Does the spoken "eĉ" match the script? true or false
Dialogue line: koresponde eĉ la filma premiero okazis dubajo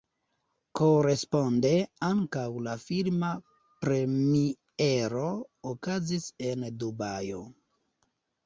false